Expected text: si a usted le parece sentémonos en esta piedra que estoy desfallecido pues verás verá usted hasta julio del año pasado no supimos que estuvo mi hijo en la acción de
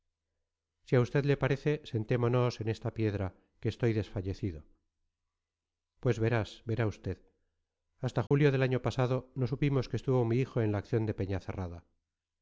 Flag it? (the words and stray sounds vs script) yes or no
yes